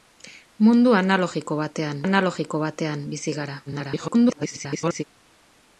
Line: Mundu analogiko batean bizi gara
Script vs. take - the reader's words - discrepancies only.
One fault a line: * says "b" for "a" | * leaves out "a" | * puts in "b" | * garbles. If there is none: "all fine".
* puts in "analogiko batean"
* garbles